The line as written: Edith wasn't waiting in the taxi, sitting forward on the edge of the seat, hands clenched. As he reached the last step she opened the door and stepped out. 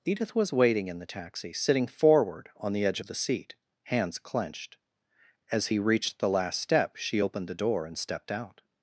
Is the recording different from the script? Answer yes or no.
yes